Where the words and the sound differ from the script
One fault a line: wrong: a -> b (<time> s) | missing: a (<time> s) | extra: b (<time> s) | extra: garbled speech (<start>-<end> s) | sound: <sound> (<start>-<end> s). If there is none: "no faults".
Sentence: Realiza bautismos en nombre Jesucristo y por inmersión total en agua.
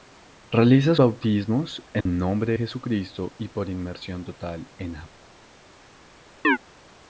sound: dropout (2.0-2.1 s)
sound: chirp (6.4-6.6 s)